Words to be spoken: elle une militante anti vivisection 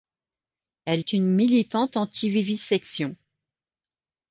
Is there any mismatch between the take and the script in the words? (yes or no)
no